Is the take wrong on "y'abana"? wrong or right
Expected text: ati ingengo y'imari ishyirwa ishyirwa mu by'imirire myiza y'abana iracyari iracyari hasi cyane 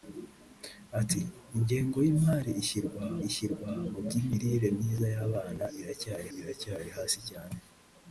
right